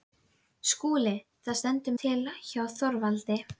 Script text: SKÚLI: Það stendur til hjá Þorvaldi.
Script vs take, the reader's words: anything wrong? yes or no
no